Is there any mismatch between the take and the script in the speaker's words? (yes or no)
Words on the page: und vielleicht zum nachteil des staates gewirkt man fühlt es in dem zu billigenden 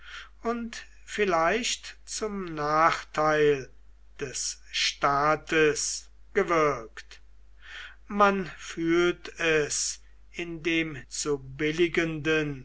no